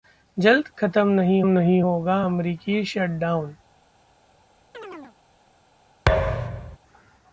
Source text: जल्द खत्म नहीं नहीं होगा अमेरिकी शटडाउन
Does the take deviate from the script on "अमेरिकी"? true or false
false